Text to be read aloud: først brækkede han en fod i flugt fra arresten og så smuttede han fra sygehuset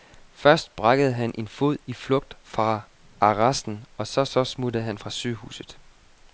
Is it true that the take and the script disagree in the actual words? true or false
true